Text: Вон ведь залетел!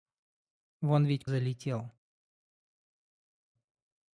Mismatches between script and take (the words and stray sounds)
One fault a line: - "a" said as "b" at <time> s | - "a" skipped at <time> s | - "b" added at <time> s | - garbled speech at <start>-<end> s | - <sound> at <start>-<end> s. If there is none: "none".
none